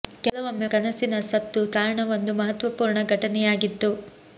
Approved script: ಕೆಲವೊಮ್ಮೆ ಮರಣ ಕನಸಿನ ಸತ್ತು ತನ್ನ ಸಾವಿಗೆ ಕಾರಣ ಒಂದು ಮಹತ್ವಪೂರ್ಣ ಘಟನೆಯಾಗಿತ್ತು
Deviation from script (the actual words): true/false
true